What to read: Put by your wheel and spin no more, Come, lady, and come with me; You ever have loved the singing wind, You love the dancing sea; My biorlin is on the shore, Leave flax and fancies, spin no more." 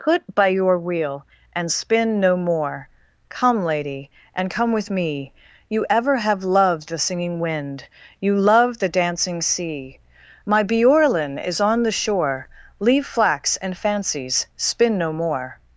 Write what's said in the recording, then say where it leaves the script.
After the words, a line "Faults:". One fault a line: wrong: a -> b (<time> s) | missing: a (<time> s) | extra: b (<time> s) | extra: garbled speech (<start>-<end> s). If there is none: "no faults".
Put by your wheel and spin no more, Come, lady, and come with me; You ever have loved the singing wind, You love the dancing sea; My biorlin is on the shore, Leave flax and fancies, spin no more."
Faults:
no faults